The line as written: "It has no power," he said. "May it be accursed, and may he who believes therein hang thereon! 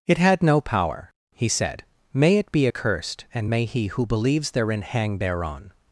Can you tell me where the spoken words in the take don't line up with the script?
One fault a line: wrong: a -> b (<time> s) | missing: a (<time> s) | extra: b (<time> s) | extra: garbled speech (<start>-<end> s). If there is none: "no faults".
wrong: has -> had (0.2 s)